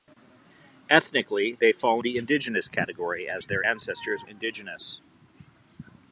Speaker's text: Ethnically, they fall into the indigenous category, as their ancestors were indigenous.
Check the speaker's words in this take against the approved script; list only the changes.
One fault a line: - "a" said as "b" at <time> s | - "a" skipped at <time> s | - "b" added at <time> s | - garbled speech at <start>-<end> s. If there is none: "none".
- "into" skipped at 2.0 s
- "were" skipped at 4.2 s